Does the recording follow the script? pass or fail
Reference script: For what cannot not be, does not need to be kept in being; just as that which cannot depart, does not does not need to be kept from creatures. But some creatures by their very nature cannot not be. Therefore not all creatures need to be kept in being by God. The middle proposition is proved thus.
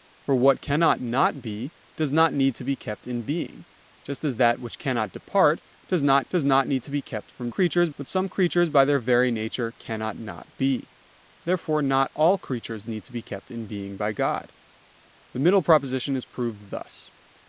pass